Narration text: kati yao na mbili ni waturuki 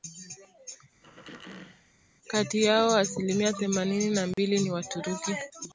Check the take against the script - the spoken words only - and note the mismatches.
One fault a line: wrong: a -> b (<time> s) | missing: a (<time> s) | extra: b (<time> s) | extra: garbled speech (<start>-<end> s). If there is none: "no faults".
extra: asilimia themanini (3.0 s)